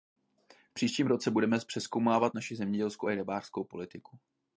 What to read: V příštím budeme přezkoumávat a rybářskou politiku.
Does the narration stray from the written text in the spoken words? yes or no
yes